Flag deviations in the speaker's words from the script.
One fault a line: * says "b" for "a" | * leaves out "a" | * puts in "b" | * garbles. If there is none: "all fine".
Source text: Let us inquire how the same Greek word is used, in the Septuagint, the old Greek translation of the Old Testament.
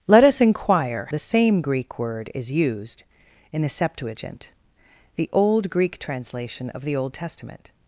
* leaves out "how"